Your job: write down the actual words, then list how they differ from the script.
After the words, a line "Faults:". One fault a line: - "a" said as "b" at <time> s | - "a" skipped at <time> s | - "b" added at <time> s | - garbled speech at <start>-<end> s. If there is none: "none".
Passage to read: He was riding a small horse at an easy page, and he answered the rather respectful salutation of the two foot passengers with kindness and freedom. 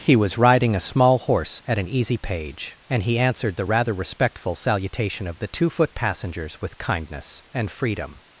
He was riding a small horse at an easy page, and he answered the rather respectful salutation of the two foot passengers with kindness and freedom.
Faults:
none